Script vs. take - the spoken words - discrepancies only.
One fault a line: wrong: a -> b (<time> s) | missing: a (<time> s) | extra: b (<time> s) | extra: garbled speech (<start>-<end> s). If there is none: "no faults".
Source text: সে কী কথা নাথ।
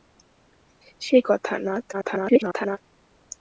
missing: কী (1.2 s)
extra: garbled speech (1.9-2.8 s)